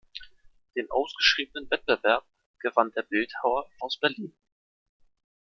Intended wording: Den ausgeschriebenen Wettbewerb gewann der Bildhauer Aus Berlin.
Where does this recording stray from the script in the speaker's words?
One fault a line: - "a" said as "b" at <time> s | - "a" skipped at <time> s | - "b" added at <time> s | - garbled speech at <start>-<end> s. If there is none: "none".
none